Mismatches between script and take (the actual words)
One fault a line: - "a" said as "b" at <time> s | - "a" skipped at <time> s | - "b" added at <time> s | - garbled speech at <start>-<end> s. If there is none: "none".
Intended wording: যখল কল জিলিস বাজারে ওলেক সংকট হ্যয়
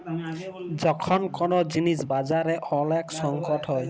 none